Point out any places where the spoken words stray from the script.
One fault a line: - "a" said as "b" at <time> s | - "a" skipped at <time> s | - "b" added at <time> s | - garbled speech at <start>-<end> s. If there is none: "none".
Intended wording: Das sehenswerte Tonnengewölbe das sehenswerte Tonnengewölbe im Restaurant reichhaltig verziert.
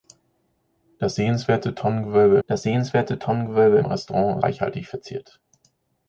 none